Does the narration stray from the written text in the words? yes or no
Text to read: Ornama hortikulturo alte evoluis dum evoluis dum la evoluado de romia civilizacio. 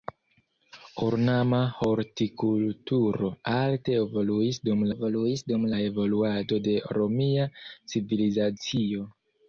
no